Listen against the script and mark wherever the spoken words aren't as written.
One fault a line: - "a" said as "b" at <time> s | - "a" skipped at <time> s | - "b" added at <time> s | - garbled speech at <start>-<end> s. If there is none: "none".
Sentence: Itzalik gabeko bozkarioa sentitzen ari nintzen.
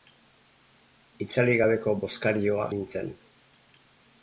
- "sentitzen ari" skipped at 2.7 s